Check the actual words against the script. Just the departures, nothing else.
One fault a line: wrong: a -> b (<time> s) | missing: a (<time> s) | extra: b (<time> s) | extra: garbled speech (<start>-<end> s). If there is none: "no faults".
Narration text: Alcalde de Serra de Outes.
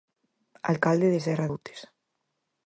missing: de (1.5 s)